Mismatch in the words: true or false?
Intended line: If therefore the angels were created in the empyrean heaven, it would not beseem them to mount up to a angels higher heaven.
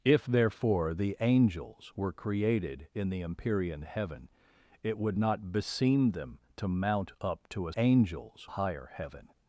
false